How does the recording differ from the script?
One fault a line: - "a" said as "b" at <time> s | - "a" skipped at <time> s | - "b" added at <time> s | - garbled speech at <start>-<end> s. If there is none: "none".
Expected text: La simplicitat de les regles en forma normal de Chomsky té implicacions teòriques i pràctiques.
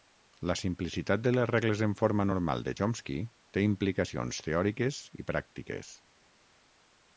none